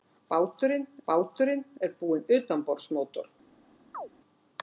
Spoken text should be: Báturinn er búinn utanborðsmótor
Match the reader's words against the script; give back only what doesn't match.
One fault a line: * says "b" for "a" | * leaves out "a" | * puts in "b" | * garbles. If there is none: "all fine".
* puts in "báturinn"